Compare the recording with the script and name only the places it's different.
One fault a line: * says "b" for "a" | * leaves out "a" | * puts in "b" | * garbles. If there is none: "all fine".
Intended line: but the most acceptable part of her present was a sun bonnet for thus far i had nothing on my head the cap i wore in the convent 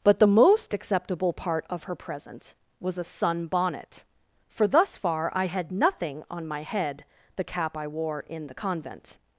all fine